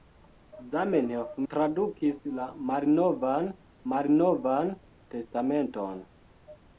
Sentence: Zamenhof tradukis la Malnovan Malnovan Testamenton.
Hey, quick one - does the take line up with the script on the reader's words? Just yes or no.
yes